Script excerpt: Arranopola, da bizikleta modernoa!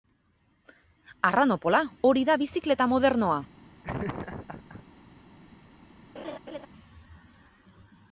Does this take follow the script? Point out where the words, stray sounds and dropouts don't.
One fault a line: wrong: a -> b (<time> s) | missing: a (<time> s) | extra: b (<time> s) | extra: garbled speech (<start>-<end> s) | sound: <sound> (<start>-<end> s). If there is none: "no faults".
extra: hori (2.1 s)
sound: laugh (3.8-4.8 s)
sound: laugh (6.2-6.7 s)